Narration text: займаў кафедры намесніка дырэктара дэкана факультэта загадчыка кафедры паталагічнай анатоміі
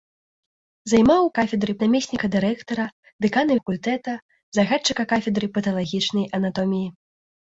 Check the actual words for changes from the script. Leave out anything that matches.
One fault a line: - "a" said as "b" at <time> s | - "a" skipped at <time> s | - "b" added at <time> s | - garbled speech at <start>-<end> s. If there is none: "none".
none